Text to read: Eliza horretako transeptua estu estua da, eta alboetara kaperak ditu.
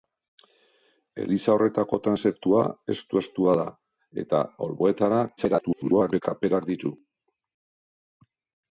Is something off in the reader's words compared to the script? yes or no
yes